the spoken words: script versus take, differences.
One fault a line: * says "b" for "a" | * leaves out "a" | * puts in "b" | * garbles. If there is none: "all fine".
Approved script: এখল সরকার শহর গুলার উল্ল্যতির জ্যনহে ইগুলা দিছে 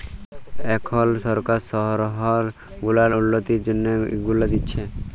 all fine